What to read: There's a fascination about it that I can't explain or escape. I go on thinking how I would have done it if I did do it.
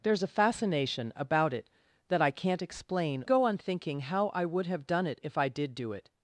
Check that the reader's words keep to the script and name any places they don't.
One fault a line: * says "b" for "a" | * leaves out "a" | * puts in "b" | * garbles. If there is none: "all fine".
* leaves out "or escape I"